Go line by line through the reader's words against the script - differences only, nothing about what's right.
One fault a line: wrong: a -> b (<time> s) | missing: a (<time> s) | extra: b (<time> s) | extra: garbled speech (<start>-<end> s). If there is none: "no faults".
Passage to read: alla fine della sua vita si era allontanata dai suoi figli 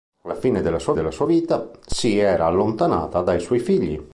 extra: della sua (0.9 s)